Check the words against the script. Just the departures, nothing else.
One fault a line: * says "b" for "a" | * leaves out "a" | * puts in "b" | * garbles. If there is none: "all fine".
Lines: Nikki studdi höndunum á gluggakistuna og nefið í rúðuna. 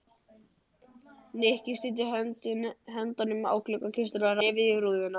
all fine